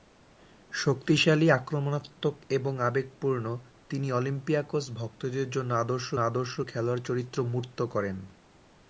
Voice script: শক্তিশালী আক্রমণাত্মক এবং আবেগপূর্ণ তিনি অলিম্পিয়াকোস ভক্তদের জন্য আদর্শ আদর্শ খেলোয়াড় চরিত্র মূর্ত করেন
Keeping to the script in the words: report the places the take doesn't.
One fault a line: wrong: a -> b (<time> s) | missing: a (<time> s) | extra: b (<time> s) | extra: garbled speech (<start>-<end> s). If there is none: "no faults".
no faults